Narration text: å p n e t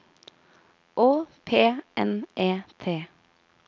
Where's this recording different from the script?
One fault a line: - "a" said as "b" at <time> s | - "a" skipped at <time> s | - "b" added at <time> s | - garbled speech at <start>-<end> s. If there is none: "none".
none